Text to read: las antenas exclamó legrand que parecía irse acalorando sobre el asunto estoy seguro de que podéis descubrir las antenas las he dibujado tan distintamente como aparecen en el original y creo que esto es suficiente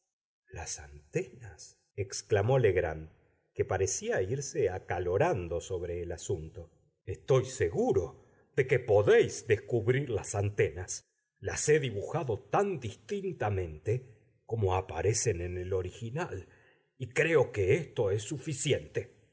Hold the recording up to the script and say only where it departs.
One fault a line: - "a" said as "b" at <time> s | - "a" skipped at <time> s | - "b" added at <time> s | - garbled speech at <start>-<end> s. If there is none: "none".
none